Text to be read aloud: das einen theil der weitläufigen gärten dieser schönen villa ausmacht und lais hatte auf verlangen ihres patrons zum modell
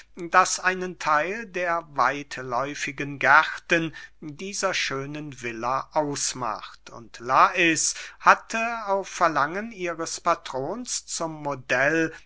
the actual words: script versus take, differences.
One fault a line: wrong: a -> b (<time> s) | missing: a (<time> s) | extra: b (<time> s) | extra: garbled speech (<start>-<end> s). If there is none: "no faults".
no faults